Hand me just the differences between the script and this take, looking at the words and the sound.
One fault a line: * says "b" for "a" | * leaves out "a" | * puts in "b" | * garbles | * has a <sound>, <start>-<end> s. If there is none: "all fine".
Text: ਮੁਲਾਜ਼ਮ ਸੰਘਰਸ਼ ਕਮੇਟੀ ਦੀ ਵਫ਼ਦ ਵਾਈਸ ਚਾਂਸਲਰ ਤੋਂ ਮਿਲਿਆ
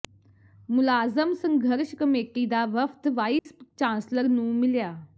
* says "ਦਾ" for "ਦੀ"
* has a dropout, 3.4-3.5 s
* says "ਨੂੰ" for "ਤੋਂ"